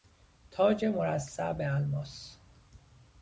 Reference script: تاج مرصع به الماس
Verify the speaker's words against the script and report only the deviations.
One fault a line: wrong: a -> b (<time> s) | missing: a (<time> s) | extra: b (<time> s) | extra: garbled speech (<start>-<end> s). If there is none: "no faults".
no faults